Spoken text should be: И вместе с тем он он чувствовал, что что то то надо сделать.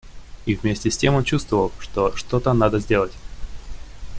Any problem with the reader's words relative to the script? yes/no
yes